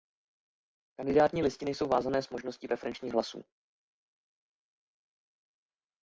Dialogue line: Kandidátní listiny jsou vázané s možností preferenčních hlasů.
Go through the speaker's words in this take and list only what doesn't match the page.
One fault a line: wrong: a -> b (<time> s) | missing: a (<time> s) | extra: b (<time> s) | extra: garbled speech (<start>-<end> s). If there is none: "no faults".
no faults